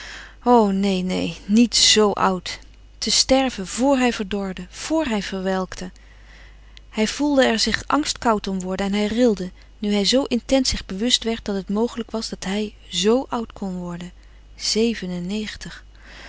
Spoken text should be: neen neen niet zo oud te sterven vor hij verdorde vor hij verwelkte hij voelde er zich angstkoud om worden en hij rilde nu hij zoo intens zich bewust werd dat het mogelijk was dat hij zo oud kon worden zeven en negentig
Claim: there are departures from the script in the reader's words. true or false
false